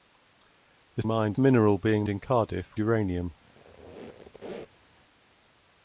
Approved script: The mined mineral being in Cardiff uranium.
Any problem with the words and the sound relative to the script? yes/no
yes